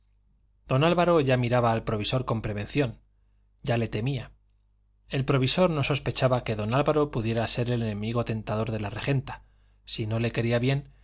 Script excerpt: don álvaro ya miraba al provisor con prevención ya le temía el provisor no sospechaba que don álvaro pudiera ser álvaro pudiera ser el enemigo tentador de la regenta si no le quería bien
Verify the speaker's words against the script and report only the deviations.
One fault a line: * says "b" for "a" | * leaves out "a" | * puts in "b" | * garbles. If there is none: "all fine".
* leaves out "álvaro pudiera ser"